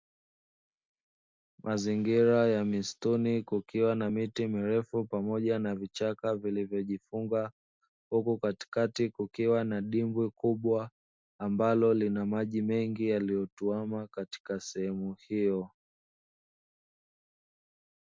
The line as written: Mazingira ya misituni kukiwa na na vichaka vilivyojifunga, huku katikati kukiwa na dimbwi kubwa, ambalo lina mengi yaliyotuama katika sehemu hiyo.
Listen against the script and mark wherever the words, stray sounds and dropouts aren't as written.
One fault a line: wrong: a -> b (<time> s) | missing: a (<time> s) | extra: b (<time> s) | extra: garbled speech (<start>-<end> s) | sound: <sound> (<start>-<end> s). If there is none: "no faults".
extra: miti mirefu pamoja (4.1 s)
extra: maji (12.3 s)